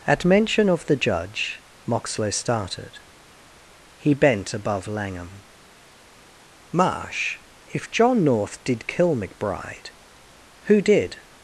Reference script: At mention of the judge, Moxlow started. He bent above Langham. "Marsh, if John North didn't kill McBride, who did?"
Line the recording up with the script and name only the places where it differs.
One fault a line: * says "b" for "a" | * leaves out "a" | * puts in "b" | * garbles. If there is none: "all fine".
* says "did" for "didn't"